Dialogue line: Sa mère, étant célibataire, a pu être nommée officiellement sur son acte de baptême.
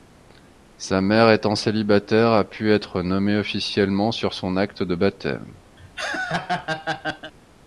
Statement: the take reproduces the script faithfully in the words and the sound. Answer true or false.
false